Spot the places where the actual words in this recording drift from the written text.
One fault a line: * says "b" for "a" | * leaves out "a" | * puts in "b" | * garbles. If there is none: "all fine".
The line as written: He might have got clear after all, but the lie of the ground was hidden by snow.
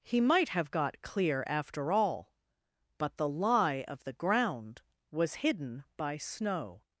all fine